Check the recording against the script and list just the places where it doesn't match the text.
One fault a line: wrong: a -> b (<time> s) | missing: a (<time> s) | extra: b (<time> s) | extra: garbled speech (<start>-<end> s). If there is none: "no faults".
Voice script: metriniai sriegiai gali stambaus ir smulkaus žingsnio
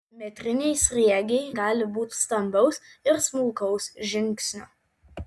extra: būti (1.9 s)